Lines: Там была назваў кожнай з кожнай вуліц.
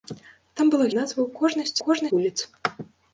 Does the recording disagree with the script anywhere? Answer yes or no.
no